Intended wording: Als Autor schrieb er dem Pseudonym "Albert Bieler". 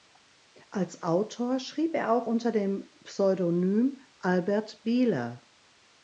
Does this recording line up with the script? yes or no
no